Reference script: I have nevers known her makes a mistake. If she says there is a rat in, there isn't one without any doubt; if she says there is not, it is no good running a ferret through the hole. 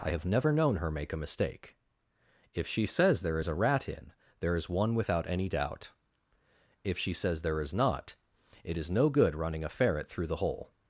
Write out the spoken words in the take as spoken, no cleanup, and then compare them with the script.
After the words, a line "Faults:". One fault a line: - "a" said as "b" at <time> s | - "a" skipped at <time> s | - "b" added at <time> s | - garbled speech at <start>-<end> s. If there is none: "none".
I have never known her make a mistake. If she says there is a rat in, there is one without any doubt; if she says there is not, it is no good running a ferret through the hole.
Faults:
- "nevers" said as "never" at 0.3 s
- "makes" said as "make" at 0.9 s
- "isn't" said as "is" at 4.6 s